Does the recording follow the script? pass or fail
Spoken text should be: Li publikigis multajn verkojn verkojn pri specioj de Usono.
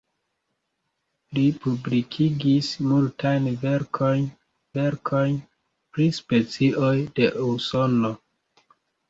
pass